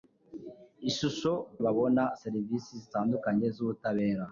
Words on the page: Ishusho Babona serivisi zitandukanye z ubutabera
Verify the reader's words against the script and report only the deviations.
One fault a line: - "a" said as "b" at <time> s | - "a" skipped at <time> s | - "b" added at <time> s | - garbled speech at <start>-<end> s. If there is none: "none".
none